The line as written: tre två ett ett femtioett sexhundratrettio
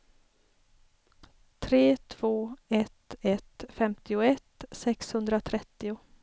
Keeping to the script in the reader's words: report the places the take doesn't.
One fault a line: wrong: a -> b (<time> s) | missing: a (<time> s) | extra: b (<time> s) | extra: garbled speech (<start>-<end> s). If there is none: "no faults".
no faults